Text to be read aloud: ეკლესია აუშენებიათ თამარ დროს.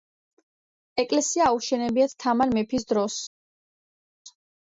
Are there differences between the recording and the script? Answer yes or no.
yes